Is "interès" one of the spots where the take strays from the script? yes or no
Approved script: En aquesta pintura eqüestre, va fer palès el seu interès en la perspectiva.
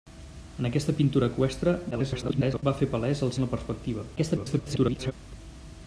yes